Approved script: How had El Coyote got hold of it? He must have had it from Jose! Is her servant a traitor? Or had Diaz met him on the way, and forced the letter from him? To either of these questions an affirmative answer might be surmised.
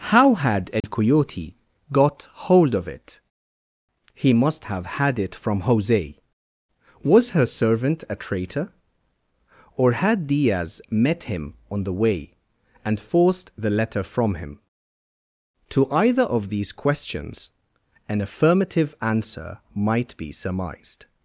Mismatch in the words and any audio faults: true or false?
true